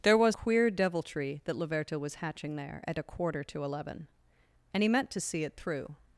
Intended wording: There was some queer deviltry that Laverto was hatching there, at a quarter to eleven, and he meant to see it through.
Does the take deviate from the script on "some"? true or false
true